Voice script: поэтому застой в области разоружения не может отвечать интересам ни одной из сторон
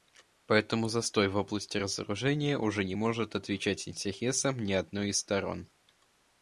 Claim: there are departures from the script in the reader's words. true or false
true